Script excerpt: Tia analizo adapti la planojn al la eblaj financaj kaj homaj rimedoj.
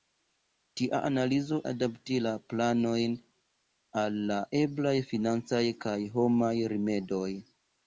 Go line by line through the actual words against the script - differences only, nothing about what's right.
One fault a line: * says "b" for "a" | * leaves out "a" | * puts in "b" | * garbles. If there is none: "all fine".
all fine